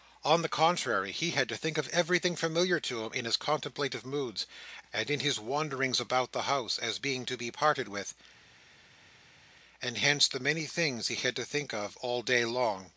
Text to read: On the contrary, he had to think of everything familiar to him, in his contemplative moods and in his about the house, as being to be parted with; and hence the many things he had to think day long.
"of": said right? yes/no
yes